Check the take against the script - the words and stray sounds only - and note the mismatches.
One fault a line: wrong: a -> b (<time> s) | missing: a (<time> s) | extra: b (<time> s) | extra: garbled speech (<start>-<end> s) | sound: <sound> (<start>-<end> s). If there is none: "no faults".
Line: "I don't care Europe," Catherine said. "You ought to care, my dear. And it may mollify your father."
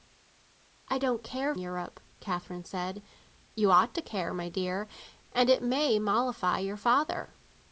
no faults